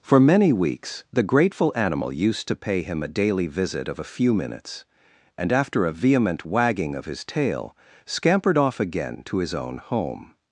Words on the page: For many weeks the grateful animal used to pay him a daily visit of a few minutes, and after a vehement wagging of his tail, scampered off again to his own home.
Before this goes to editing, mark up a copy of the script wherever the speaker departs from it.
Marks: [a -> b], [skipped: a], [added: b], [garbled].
For many weeks the grateful animal used to pay him a daily visit of a few minutes, and after a vehement wagging of his tail, scampered off again to his own home.